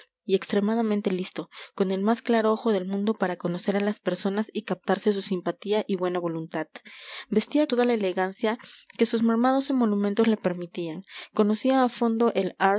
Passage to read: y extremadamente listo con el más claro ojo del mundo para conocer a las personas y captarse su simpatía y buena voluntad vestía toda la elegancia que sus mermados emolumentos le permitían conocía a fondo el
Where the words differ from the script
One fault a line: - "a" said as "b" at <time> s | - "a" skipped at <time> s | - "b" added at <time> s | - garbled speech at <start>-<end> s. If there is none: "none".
none